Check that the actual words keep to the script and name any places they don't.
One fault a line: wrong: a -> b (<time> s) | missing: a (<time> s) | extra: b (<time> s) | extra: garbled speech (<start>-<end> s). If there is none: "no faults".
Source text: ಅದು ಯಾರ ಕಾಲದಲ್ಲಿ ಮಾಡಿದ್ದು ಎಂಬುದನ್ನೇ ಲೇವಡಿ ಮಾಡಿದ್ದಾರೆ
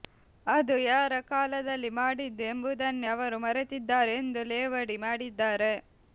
extra: ಅವರು ಮರೆತಿದ್ದಾರೆ ಎಂದು (3.1 s)